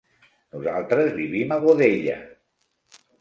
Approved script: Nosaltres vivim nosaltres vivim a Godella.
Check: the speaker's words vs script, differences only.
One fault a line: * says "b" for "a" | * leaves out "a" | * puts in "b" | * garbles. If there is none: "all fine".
* leaves out "nosaltres vivim"